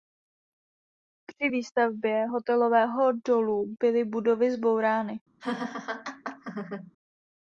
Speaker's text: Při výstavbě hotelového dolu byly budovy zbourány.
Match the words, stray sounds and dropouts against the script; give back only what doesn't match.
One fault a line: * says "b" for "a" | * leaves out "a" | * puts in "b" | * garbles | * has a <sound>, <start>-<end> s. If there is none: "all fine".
* has a laugh, 5.4-6.9 s